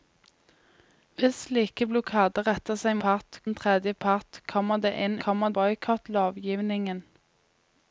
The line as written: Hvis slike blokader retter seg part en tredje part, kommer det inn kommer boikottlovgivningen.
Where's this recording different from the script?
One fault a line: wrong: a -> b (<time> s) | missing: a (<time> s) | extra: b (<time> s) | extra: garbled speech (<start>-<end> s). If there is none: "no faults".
no faults